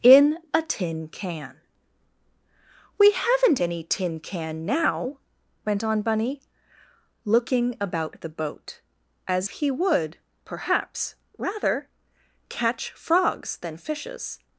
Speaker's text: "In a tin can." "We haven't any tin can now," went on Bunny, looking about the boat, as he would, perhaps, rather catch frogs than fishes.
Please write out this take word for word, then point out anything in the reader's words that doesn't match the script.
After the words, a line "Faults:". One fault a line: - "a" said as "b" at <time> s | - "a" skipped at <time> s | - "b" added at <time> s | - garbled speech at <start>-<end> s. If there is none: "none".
"In a tin can." "We haven't any tin can now," went on Bunny, looking about the boat, as he would, perhaps, rather catch frogs than fishes.
Faults:
none